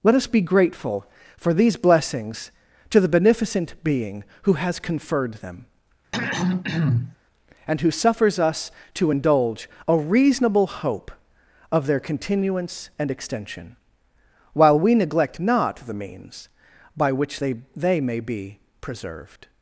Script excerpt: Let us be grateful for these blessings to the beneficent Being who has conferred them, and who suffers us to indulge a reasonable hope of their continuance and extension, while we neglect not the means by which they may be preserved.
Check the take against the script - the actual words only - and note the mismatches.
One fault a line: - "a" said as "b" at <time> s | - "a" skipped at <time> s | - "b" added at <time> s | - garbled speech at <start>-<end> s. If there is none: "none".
- "they" added at 17.8 s